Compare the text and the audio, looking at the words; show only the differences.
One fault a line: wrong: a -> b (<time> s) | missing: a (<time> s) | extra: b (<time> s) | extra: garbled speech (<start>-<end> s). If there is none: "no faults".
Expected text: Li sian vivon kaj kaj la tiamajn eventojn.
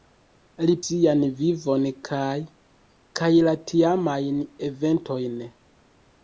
no faults